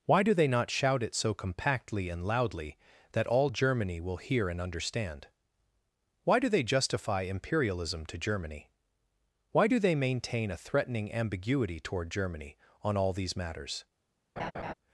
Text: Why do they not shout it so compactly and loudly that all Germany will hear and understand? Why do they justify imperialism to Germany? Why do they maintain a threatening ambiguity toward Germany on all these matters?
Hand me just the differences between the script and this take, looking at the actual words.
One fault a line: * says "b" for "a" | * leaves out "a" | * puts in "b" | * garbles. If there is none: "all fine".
all fine